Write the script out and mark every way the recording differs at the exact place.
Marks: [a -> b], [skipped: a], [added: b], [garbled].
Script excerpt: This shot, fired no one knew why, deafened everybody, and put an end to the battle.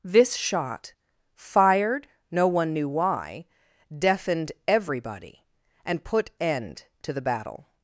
This shot, fired no one knew why, deafened everybody, and put [skipped: an] end to the battle.